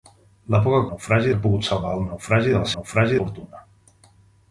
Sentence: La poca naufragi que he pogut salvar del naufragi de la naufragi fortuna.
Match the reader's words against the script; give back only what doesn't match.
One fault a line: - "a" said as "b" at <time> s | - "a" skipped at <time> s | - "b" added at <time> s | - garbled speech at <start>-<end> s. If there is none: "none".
none